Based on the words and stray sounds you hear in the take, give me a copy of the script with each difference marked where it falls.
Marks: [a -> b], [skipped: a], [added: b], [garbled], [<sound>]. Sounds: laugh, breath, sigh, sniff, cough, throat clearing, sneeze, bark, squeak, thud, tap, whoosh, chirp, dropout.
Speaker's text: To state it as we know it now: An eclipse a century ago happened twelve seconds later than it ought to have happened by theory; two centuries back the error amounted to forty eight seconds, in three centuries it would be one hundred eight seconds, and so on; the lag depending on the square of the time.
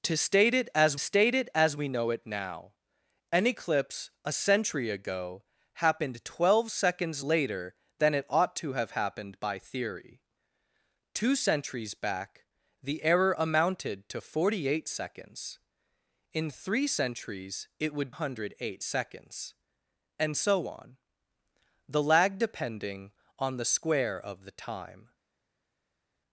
To state it as [added: state it as] we know it now: An eclipse a century ago happened twelve seconds later than it ought to have happened by theory; two centuries back the error amounted to forty eight seconds, in three centuries it would [skipped: be one] hundred eight seconds, and so on; the lag depending on the square of the time.